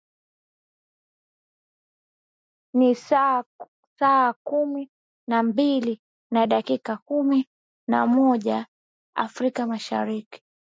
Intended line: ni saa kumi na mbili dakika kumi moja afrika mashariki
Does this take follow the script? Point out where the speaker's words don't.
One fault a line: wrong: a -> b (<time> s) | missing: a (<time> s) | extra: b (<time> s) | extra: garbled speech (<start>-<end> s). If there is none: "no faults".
extra: na (6.3 s)
extra: na (7.9 s)